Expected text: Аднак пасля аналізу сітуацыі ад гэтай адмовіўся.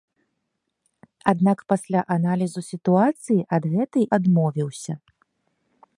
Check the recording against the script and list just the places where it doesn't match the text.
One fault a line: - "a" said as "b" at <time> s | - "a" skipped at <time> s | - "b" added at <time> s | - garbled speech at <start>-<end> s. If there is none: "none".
none